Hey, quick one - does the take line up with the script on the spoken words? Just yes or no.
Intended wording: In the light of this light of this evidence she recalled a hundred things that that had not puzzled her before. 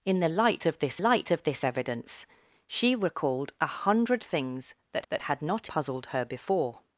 yes